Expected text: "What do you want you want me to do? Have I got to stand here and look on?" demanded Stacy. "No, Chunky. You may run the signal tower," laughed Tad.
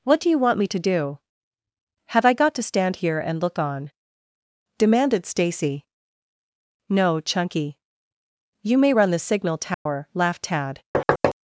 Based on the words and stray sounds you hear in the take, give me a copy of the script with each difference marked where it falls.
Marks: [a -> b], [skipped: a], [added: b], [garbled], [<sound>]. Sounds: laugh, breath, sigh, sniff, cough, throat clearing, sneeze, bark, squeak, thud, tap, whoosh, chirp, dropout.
"What do you want [skipped: you want] me to do? Have I got to stand here and look on?" demanded Stacy. "No, Chunky. You may run the signal tower," [dropout] laughed Tad. [thud]